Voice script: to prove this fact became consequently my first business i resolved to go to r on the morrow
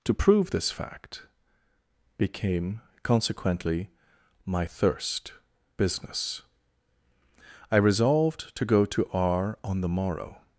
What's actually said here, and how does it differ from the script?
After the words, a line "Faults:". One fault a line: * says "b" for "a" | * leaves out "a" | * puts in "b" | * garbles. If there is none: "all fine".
to prove this fact became consequently my thirst business i resolved to go to r on the morrow
Faults:
* says "thirst" for "first"